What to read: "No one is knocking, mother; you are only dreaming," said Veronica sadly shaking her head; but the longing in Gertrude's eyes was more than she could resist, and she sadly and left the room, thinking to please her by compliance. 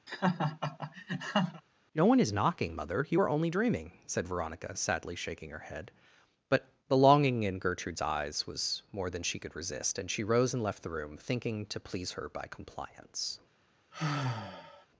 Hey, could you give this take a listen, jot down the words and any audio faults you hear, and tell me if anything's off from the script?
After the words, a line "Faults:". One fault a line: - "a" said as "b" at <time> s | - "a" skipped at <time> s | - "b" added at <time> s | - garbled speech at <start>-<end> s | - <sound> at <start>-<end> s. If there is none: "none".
"No one is knocking, mother; you are only dreaming," said Veronica sadly shaking her head; but the longing in Gertrude's eyes was more than she could resist, and she rose and left the room, thinking to please her by compliance.
Faults:
- laugh at 0.1-1.6 s
- "sadly" said as "rose" at 10.2 s
- sigh at 13.9-14.9 s